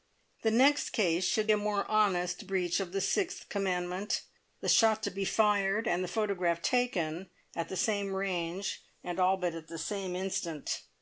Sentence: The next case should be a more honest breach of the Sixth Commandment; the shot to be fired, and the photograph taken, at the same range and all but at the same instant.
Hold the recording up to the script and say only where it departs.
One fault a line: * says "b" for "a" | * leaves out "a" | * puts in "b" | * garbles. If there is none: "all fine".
* leaves out "be"